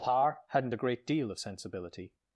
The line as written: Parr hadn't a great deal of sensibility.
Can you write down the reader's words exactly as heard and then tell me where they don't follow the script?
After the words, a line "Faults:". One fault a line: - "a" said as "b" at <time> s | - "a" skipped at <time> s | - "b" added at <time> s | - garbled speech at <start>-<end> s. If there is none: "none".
Parr hadn't a great deal of sensibility.
Faults:
none